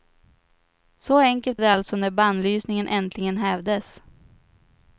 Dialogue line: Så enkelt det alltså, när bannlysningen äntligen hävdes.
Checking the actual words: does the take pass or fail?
pass